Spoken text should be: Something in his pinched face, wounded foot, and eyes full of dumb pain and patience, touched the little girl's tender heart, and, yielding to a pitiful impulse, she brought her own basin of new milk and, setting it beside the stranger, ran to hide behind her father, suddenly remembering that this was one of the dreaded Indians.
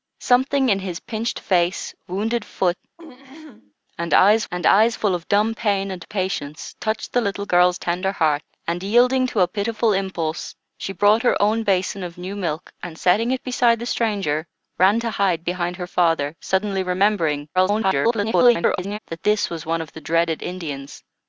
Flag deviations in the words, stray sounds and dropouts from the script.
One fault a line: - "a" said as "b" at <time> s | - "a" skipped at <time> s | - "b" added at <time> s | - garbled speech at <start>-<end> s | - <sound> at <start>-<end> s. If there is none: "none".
- throat clearing at 3.0-3.7 s
- "and eyes" added at 4.5 s
- garbled speech at 17.5-19.0 s